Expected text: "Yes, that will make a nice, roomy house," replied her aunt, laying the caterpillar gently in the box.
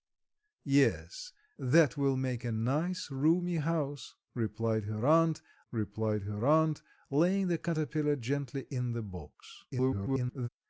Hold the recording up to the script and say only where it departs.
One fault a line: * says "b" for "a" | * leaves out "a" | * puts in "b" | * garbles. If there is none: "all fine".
* puts in "replied her aunt"
* garbles